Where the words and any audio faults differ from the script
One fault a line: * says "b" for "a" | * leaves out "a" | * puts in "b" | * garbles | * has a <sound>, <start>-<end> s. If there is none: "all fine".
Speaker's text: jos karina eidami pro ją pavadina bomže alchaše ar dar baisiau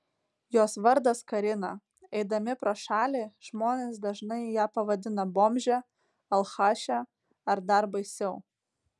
* puts in "vardas"
* puts in "šalį žmonės dažnai"